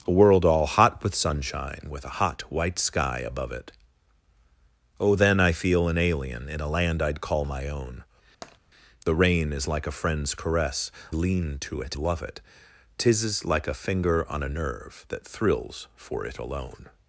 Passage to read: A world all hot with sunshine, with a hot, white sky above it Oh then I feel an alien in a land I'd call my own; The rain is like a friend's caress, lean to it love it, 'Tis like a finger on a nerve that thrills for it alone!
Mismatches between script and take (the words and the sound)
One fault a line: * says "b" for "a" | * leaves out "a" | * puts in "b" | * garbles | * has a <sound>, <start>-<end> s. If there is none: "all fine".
* has a tap, 8.4-8.6 s